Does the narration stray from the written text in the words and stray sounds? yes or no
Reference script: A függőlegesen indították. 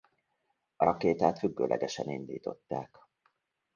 yes